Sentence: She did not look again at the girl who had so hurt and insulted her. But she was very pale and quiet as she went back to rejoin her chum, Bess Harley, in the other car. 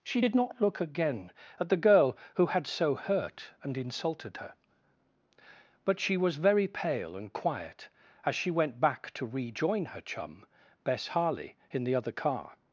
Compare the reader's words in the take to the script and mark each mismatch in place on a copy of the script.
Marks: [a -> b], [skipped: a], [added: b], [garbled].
She did not look again at the girl who had so hurt and insulted her. But she was very pale and quiet as she went back to rejoin her chum, Bess Harley, in the other car.